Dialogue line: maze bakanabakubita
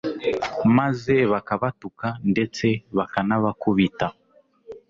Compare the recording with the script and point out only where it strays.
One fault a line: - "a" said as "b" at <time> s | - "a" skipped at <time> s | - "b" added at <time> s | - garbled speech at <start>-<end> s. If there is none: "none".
- "bakabatuka ndetse" added at 1.3 s